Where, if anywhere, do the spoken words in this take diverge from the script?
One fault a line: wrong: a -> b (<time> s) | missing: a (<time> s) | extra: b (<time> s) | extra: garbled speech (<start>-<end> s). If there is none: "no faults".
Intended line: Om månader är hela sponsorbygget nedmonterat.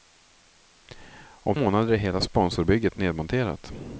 no faults